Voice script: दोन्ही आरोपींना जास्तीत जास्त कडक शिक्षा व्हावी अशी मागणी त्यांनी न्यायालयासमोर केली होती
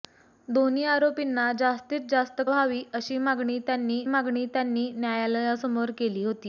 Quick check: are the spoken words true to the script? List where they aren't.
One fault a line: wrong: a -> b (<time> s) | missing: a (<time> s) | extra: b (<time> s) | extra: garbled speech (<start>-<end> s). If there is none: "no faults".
wrong: कडक शिक्षा व्हावी अशी -> व्हावी अशी मागणी त्यांनी (2.5 s)